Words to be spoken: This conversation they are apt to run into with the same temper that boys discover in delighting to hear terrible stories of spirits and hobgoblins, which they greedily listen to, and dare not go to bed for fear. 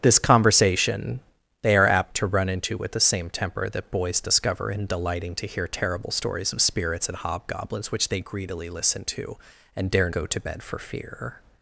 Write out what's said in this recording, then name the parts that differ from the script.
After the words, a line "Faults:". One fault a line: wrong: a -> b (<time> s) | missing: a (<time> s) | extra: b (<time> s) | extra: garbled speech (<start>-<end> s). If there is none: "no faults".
This conversation they are apt to run into with the same temper that boys discover in delighting to hear terrible stories of spirits and hobgoblins, which they greedily listen to, and dare go to bed for fear.
Faults:
missing: not (10.1 s)